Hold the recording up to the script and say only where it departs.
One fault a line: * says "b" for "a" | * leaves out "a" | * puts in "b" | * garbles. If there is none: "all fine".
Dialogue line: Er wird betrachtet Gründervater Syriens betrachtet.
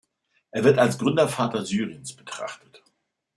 * says "als" for "betrachtet"